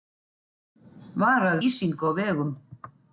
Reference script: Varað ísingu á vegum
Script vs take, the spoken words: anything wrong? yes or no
no